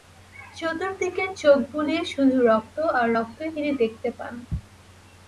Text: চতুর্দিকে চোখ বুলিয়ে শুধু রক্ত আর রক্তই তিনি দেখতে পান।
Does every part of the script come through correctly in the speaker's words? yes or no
yes